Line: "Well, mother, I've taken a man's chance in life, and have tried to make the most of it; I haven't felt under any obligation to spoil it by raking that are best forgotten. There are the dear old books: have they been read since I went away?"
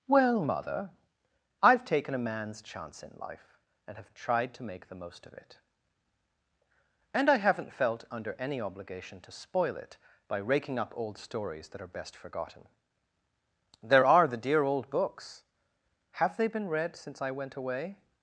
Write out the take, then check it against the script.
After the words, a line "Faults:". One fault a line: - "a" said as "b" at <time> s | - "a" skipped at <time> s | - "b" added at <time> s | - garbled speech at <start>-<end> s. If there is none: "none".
"Well, mother, I've taken a man's chance in life, and have tried to make the most of it; and I haven't felt under any obligation to spoil it by raking up old stories that are best forgotten. There are the dear old books: have they been read since I went away?"
Faults:
- "and" added at 7.1 s
- "up old stories" added at 10.8 s